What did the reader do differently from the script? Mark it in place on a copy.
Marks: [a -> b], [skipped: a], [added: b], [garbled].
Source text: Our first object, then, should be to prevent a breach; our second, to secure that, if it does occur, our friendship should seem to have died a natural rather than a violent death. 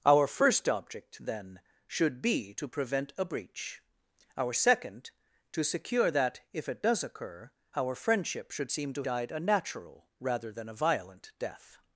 Our first object, then, should be to prevent a breach; our second, to secure that, if it does occur, our friendship should seem to [skipped: have] died a natural rather than a violent death.